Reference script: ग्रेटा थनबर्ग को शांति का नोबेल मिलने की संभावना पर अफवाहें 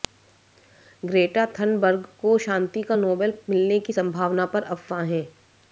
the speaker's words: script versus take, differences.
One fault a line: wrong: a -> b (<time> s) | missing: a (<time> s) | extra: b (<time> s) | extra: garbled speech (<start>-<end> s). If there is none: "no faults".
no faults